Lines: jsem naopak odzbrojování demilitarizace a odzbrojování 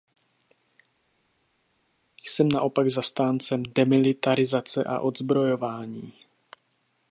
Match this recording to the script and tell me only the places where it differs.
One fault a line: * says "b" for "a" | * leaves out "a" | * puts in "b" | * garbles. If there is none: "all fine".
* says "zastáncem" for "odzbrojování"